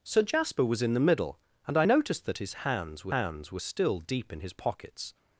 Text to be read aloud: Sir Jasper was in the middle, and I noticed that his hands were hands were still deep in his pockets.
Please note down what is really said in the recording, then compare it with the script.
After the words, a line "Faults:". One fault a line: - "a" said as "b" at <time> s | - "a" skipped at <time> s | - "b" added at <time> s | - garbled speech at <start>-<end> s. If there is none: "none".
Sir Jasper was in the middle, and I noticed that his hands were hands were still deep in his pockets.
Faults:
none